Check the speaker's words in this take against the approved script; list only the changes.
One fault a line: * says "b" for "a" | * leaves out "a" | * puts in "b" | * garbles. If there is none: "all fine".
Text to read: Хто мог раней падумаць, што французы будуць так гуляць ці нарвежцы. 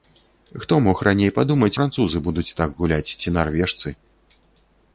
* leaves out "што"